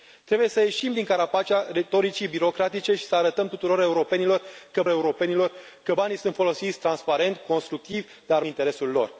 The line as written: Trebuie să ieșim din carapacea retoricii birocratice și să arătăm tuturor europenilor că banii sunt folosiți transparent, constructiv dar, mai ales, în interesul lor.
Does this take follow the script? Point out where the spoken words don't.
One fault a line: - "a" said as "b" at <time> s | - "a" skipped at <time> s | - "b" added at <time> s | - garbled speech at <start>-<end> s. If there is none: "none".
- "europenilor că" added at 4.9 s
- "mai ales în" skipped at 8.4 s